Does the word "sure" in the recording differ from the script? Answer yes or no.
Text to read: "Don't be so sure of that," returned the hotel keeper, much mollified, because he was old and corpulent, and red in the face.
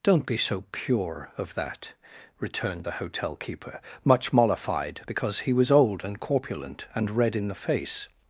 yes